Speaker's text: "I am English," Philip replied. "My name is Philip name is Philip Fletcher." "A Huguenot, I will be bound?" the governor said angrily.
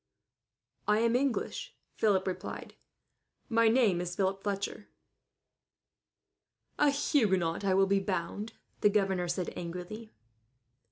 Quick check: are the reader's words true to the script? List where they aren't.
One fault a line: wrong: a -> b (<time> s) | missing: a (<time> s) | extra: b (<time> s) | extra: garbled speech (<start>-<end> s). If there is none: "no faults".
missing: name is Philip (4.4 s)